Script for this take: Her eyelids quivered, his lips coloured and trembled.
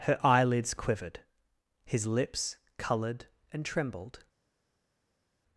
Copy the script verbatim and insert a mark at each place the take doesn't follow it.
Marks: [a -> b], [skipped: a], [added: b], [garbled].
Her eyelids quivered, his lips coloured and trembled.